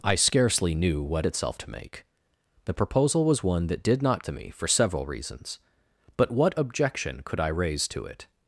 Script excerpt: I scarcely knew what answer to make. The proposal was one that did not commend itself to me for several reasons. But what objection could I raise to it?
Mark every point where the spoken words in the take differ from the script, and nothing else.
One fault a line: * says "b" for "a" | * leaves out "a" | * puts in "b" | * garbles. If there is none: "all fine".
* says "itself" for "answer"
* leaves out "commend itself"